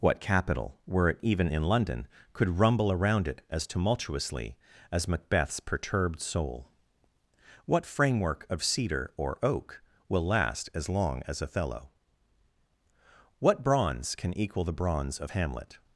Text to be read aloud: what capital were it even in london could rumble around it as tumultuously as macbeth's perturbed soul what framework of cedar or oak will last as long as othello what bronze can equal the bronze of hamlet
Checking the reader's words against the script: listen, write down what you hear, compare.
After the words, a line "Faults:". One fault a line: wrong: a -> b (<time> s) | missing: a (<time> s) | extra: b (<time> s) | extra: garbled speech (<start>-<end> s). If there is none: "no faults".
what capital were it even in london could rumble around it as tumultuously as macbeth's perturbed soul what framework of cedar or oak will last as long as othello what bronze can equal the bronze of hamlet
Faults:
no faults